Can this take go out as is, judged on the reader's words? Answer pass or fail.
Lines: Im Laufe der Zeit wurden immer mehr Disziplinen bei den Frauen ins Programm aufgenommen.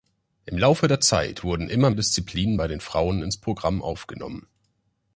fail